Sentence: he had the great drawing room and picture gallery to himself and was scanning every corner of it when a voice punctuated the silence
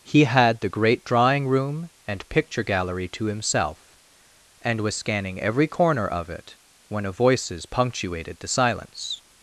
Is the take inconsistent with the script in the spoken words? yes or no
yes